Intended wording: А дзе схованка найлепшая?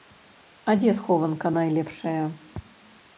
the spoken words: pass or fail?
pass